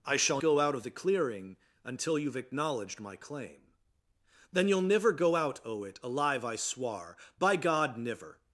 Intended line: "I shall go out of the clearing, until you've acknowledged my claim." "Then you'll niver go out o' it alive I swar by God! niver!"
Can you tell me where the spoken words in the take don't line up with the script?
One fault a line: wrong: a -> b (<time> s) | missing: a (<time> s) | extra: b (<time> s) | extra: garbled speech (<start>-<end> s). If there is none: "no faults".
no faults